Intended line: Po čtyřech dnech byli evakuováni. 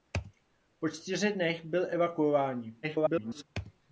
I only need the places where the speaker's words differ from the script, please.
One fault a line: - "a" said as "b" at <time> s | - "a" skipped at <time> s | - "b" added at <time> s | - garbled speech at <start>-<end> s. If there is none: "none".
- garbled speech at 2.8-3.4 s